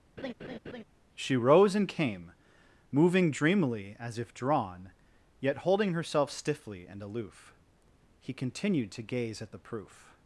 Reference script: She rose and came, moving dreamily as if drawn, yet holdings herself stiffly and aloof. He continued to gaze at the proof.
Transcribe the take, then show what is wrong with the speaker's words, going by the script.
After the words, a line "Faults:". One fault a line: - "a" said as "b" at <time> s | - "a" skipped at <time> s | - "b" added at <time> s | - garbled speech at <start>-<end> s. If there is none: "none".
She rose and came, moving dreamily as if drawn, yet holding herself stiffly and aloof. He continued to gaze at the proof.
Faults:
- "holdings" said as "holding" at 5.6 s